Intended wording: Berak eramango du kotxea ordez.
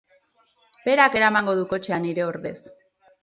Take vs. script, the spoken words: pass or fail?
fail